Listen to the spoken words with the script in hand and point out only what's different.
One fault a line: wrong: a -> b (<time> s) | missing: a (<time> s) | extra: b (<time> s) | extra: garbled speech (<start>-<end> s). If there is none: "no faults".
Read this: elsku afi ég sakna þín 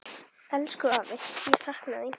no faults